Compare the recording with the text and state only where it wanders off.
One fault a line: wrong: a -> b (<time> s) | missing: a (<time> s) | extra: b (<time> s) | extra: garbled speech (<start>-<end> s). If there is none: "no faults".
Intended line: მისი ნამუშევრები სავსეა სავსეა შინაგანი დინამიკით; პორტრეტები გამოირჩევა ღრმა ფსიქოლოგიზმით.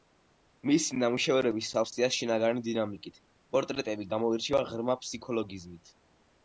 missing: სავსეა (2.1 s)